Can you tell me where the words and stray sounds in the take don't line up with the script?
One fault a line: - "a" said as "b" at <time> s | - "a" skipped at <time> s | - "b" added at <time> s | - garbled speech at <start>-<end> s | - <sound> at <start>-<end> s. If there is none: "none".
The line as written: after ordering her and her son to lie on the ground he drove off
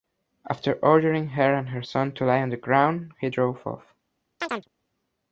- chirp at 4.4-4.7 s